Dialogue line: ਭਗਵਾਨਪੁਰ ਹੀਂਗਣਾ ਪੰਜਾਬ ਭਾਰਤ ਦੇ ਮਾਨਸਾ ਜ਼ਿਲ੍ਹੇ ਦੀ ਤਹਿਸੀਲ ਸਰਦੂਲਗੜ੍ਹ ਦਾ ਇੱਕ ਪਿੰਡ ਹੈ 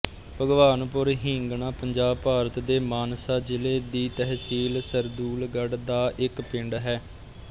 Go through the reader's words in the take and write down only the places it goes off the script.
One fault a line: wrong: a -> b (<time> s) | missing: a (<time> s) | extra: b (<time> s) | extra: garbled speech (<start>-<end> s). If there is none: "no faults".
no faults